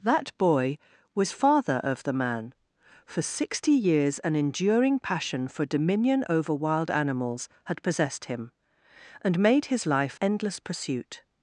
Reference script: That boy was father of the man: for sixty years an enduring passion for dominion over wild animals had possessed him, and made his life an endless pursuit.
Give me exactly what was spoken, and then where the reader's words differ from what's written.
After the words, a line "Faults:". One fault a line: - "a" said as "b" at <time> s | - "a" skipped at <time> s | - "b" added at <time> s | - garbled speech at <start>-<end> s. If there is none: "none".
That boy was father of the man: for sixty years an enduring passion for dominion over wild animals had possessed him, and made his life endless pursuit.
Faults:
- "an" skipped at 10.2 s